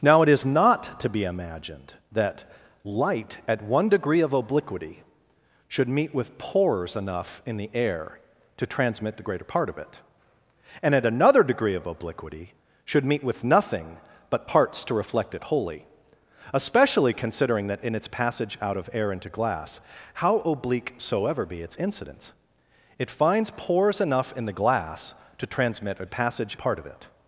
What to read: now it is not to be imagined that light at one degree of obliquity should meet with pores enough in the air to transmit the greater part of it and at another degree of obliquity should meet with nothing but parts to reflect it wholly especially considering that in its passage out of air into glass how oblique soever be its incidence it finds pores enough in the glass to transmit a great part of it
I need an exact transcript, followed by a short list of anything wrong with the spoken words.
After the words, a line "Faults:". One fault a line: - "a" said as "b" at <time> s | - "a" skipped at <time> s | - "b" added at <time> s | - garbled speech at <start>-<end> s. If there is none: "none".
now it is not to be imagined that light at one degree of obliquity should meet with pores enough in the air to transmit the greater part of it and at another degree of obliquity should meet with nothing but parts to reflect it wholly especially considering that in its passage out of air into glass how oblique soever be its incidence it finds pores enough in the glass to transmit a passage part of it
Faults:
- "great" said as "passage" at 26.1 s